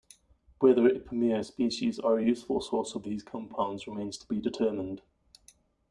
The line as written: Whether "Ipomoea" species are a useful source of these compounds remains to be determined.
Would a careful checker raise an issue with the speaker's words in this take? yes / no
no